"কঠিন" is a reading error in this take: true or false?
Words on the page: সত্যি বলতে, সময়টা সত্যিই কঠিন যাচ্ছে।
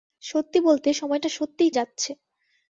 true